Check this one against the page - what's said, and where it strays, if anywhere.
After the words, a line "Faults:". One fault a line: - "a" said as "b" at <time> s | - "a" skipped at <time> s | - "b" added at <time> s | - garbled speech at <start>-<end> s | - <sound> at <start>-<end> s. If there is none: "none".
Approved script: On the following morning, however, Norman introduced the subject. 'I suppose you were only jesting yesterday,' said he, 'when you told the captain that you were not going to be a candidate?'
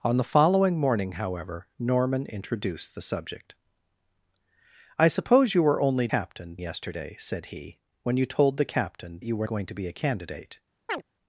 On the following morning, however, Norman introduced the subject. 'I suppose you were only captain yesterday,' said he, 'when you told the captain you were going to be a candidate?'
Faults:
- "jesting" said as "captain" at 6.1 s
- "that" skipped at 9.2 s
- "not" skipped at 9.5 s
- chirp at 10.9-11.0 s